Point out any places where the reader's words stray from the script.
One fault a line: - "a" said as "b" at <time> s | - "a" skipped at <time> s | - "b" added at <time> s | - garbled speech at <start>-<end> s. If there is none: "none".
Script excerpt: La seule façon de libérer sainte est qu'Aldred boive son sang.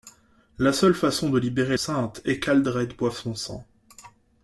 none